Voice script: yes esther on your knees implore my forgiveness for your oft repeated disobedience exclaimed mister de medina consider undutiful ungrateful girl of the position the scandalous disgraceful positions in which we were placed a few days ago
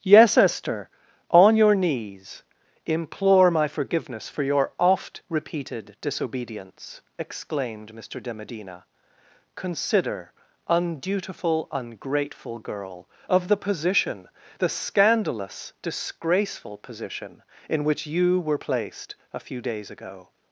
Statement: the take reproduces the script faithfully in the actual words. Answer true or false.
false